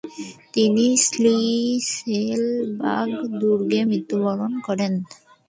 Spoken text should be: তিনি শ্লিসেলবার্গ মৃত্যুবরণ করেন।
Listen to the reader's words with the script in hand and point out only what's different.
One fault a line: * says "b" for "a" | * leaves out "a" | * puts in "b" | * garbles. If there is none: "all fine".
* puts in "দুর্গে"